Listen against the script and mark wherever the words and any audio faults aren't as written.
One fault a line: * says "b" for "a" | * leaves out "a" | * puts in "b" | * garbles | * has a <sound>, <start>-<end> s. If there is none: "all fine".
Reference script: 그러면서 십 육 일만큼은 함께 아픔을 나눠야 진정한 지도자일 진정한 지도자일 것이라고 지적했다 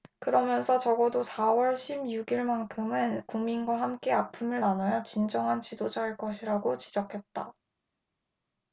* puts in "적어도 사 월"
* puts in "국민과"
* leaves out "진정한 지도자일"